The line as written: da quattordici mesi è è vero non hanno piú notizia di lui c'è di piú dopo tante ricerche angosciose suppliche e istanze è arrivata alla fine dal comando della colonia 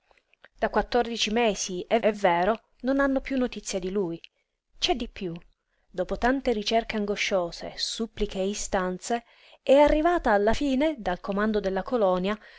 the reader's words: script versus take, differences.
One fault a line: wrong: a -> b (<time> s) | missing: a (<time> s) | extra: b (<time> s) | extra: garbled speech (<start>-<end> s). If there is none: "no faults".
no faults